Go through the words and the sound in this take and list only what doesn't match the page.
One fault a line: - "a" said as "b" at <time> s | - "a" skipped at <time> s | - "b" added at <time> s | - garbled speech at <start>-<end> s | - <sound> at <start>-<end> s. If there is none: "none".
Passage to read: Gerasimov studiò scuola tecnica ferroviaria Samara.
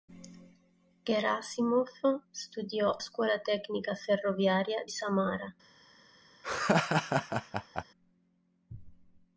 - laugh at 6.4-7.8 s